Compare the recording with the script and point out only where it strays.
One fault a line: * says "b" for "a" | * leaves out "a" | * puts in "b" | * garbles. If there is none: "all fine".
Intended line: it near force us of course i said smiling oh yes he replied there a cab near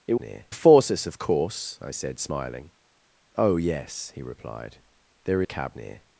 all fine